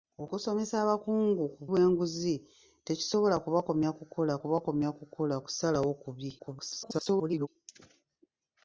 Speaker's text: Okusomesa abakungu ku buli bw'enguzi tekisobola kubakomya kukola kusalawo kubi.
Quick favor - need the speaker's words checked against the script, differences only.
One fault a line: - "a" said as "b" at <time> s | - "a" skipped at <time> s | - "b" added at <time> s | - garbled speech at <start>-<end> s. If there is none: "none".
- "buli" skipped at 1.6 s
- "kubakomya kukola" added at 4.4 s
- garbled speech at 6.4-7.5 s